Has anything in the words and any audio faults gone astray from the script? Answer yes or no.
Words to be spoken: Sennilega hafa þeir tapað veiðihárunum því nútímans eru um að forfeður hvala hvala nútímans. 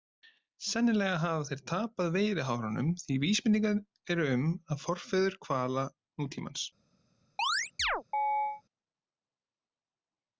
yes